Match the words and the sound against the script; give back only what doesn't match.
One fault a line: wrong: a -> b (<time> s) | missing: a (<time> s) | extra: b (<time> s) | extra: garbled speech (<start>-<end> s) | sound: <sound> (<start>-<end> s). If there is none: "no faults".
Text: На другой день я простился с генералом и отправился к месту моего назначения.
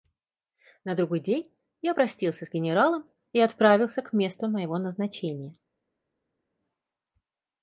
no faults